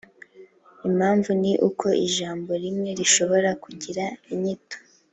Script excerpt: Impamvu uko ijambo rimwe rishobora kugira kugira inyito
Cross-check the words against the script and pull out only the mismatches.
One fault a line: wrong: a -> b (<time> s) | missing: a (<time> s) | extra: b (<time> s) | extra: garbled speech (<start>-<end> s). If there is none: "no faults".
extra: ni (1.4 s)
missing: kugira (4.0 s)